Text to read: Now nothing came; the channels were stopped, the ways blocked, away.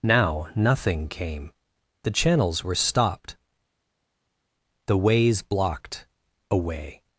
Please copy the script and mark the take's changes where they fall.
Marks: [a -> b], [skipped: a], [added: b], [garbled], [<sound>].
Now nothing came; the channels were stopped, the ways blocked, away.